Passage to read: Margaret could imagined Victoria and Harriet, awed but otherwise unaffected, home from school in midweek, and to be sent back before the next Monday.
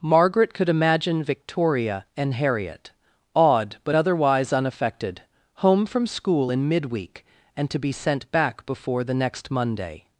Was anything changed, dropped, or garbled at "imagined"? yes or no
yes